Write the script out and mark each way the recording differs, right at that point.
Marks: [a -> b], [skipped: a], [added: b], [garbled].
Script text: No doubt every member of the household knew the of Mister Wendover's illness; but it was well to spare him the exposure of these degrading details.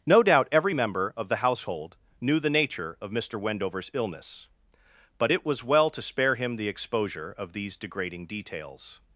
No doubt every member of the household knew the [added: nature] of Mister Wendover's illness; but it was well to spare him the exposure of these degrading details.